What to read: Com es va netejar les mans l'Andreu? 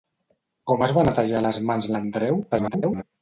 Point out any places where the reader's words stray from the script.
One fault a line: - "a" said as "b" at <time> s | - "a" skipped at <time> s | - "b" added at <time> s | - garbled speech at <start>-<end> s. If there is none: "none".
- garbled speech at 2.5-3.0 s